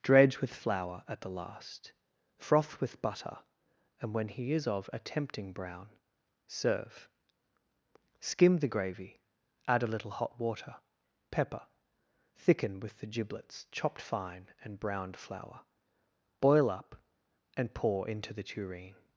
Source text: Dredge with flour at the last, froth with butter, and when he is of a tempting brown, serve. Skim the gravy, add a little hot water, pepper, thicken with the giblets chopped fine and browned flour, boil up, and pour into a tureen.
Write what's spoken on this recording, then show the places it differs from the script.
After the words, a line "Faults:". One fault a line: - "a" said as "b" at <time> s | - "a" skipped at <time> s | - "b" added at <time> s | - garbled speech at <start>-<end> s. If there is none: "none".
Dredge with flour at the last, froth with butter, and when he is of a tempting brown, serve. Skim the gravy, add a little hot water, pepper, thicken with the giblets chopped fine and browned flour, boil up, and pour into the tureen.
Faults:
- "a" said as "the" at 18.3 s